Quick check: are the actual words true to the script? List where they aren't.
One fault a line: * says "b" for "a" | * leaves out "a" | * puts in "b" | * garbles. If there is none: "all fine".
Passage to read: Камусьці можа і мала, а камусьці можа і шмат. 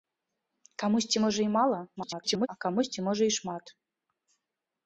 * garbles